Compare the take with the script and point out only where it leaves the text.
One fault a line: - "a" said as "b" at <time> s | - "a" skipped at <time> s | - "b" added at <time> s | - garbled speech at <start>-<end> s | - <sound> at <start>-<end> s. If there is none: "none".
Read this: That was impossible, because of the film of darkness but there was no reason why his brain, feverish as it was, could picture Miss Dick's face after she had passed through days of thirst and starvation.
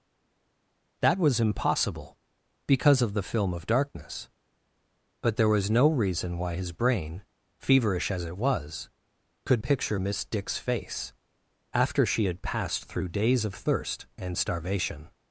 none